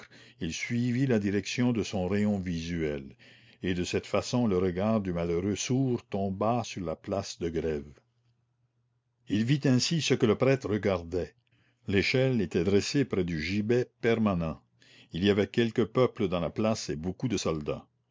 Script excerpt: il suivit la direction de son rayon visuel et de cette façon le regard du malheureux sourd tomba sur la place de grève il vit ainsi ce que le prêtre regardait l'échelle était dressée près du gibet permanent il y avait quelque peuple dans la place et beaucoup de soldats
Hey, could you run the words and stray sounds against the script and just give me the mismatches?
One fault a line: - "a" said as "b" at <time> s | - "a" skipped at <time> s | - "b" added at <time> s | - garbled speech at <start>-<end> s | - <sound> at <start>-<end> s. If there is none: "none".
none